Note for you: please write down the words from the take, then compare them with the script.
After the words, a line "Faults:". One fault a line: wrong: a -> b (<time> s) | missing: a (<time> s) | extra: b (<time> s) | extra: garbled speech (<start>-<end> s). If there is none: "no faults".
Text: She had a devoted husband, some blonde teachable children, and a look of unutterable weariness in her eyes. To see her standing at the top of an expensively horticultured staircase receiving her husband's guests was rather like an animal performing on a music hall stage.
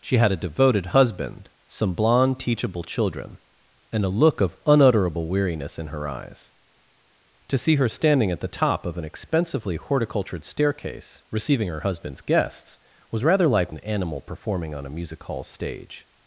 She had a devoted husband, some blonde teachable children, and a look of unutterable weariness in her eyes. To see her standing at the top of an expensively horticultured staircase receiving her husband's guests was rather like an animal performing on a music hall stage.
Faults:
no faults